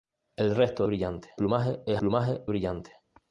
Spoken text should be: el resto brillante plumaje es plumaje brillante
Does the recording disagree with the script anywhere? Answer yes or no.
no